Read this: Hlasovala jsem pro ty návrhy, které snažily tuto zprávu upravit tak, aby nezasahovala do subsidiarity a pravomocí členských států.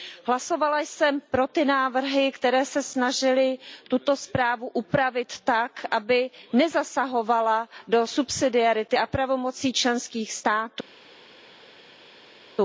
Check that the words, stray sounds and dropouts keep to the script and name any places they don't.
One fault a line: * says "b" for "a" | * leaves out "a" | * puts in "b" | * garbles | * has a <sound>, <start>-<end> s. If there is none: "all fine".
* puts in "se"